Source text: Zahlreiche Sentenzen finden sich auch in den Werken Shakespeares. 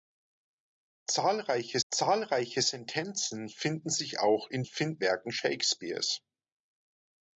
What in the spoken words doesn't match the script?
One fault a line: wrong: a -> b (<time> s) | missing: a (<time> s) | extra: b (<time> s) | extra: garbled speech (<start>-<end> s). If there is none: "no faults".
extra: zahlreiche (1.9 s)
wrong: den -> finden (4.6 s)